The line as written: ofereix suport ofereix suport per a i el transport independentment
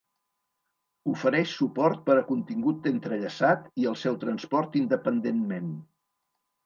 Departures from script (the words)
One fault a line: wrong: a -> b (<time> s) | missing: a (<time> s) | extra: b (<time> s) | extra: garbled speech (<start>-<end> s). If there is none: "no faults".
wrong: ofereix suport per a -> per a contingut entrellaçat (2.1 s)
extra: seu (4.0 s)